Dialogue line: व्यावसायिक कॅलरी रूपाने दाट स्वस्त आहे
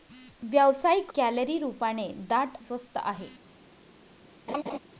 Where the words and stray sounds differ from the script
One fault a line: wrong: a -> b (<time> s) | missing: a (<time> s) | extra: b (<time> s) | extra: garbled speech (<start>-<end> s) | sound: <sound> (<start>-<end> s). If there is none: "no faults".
sound: laugh (4.5-4.8 s)